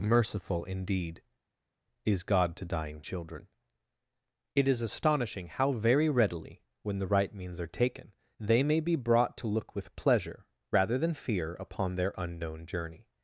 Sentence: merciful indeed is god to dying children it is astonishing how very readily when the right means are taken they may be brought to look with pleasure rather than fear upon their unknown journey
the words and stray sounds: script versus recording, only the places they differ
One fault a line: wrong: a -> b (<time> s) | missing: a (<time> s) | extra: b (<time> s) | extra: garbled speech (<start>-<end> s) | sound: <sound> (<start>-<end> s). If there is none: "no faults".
no faults